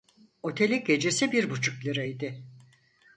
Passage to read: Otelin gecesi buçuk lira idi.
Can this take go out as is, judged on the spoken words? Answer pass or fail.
fail